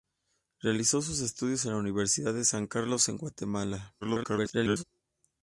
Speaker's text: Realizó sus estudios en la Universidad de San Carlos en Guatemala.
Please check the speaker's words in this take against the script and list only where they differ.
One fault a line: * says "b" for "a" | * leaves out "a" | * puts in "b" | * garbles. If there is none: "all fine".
* garbles